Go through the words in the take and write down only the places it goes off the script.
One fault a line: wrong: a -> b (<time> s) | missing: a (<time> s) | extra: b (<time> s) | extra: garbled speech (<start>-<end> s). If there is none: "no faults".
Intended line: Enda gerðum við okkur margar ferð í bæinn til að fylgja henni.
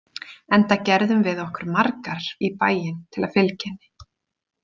missing: ferð (2.2 s)